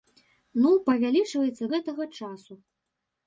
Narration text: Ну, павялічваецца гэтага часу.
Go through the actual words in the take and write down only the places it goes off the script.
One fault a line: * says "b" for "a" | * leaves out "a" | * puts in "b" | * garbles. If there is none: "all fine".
all fine